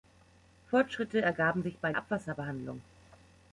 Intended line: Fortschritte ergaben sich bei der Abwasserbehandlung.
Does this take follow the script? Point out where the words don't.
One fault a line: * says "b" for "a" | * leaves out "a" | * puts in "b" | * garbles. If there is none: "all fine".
* leaves out "der"